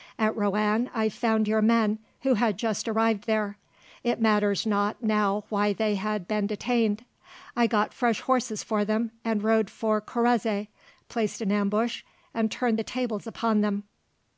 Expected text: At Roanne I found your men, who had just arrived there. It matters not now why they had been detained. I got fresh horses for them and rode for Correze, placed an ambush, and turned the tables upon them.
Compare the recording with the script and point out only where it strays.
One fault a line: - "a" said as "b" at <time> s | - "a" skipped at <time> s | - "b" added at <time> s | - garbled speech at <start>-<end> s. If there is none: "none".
none